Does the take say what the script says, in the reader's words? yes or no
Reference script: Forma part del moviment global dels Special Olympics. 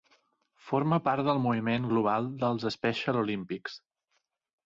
yes